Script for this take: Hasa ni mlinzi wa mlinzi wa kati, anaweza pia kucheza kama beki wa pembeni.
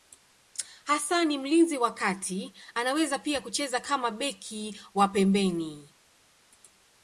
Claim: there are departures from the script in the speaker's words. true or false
true